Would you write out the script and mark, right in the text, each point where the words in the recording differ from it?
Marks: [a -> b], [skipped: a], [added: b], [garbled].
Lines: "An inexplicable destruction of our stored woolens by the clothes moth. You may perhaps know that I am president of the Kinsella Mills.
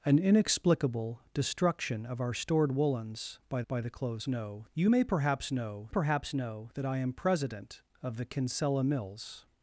"An inexplicable destruction of our stored woolens by [added: by] the clothes [moth. -> know] You may perhaps know [added: perhaps know] that I am president of the Kinsella Mills.